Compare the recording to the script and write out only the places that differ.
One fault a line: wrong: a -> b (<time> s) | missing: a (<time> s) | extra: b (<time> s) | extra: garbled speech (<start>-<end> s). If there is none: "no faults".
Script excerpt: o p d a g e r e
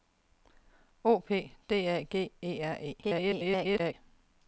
extra: garbled speech (3.0-3.9 s)